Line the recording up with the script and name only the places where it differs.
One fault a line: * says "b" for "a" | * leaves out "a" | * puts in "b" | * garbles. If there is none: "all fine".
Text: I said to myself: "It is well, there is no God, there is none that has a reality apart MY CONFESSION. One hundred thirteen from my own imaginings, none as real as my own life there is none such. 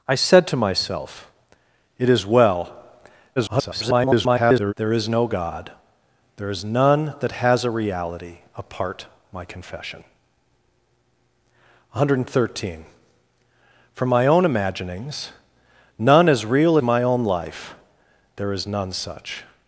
* garbles
* leaves out "as"